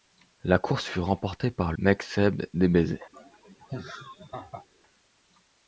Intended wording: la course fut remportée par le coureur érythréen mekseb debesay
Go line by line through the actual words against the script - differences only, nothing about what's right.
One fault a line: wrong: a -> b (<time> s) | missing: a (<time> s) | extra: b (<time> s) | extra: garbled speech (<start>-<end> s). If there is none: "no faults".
missing: le coureur érythréen (1.7 s)